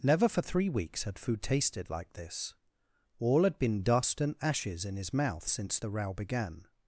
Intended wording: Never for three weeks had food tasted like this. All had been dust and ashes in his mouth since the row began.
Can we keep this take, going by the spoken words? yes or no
yes